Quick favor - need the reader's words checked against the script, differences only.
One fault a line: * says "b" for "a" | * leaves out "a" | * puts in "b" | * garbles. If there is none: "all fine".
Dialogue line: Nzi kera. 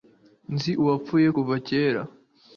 * puts in "uwapfuye kuva"